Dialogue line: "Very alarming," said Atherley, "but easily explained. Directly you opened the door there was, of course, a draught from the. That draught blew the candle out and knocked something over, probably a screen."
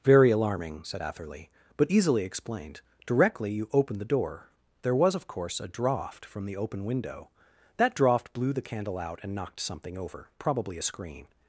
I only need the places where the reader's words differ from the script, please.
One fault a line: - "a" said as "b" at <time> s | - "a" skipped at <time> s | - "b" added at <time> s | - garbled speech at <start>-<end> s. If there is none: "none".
- "open window" added at 6.5 s